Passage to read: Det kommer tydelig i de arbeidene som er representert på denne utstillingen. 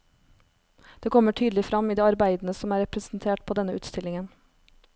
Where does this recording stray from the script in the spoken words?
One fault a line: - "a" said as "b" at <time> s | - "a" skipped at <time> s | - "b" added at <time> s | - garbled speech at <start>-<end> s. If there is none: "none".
- "frem" added at 1.6 s